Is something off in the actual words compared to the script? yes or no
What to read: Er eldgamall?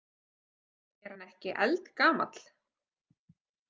yes